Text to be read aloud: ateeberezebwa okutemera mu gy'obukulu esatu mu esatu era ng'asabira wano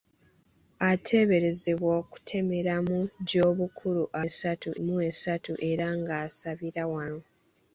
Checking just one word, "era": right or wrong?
right